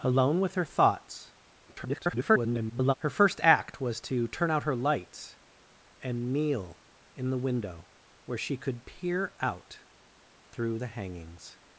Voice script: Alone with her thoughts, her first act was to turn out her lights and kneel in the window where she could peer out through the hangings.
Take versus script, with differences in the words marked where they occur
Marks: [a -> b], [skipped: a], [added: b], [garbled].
Alone with her thoughts, [garbled] her first act was to turn out her lights and kneel in the window where she could peer out through the hangings.